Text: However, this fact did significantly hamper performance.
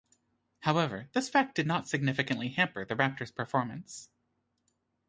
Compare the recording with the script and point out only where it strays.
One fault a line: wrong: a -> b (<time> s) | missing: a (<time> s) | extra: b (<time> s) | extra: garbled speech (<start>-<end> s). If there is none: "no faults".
extra: not (1.6 s)
extra: the Raptor's (2.8 s)